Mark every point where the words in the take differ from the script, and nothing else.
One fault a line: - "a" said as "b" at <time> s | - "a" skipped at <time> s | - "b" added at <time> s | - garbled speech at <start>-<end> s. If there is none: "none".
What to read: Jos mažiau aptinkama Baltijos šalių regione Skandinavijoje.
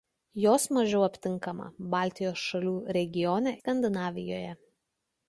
none